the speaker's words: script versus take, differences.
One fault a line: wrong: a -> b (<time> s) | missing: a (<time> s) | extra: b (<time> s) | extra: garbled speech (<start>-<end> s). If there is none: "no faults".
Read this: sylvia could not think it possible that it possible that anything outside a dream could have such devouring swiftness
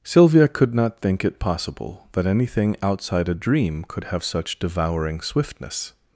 missing: it possible that (2.2 s)